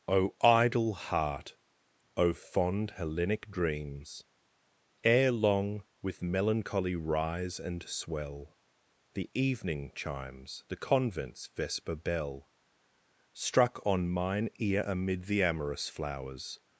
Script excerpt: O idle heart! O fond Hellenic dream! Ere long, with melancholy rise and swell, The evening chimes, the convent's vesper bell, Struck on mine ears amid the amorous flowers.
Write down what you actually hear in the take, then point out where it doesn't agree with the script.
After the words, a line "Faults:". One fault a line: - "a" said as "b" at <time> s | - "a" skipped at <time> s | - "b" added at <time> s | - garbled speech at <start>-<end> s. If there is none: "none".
O idle heart! O fond Hellenic dreams! Ere long, with melancholy rise and swell, The evening chimes, the convent's vesper bell, Struck on mine ear amid the amorous flowers.
Faults:
- "dream" said as "dreams" at 3.5 s
- "ears" said as "ear" at 14.6 s